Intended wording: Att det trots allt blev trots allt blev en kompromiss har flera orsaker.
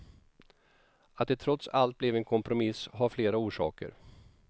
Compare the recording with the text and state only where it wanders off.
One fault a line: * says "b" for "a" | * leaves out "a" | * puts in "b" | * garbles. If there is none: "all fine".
* leaves out "trots allt blev"